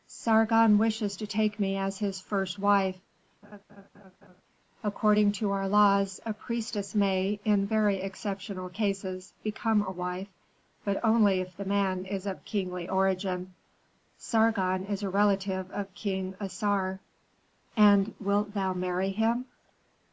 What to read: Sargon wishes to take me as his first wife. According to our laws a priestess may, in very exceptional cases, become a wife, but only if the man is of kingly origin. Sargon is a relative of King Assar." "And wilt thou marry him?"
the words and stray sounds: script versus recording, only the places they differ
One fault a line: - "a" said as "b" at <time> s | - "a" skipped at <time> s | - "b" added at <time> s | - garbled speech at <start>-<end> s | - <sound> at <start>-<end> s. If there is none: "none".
- laugh at 3.4-4.4 s